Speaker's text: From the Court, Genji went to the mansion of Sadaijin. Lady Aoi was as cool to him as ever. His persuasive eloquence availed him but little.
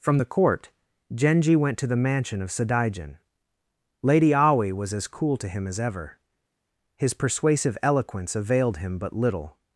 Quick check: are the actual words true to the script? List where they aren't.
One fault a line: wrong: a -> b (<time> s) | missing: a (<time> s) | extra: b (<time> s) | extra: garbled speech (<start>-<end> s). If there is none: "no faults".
no faults